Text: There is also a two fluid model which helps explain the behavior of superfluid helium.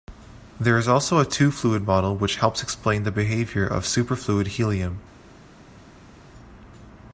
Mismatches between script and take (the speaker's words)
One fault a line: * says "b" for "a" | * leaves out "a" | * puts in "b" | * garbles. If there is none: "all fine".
all fine